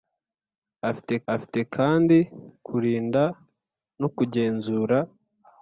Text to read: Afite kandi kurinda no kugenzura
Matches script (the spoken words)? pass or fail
fail